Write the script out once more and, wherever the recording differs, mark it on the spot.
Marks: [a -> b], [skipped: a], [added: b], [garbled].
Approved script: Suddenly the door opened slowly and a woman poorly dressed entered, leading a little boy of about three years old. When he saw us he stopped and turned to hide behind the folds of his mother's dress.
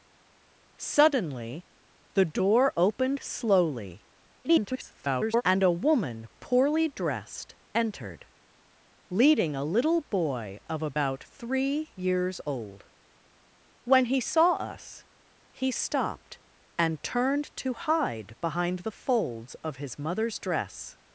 Suddenly the door opened slowly [garbled] and a woman poorly dressed entered, leading a little boy of about three years old. When he saw us he stopped and turned to hide behind the folds of his mother's dress.